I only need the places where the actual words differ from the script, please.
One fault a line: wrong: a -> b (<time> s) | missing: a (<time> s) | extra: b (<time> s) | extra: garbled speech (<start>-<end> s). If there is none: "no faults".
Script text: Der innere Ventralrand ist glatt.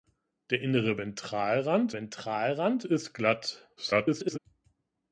extra: Ventralrand (1.9 s)
extra: garbled speech (3.8-4.4 s)